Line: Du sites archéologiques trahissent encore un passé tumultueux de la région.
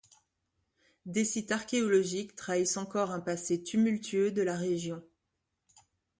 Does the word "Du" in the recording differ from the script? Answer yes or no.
yes